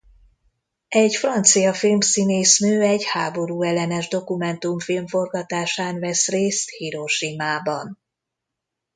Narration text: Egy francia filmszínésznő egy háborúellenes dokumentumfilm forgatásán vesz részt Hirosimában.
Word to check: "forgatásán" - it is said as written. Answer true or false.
true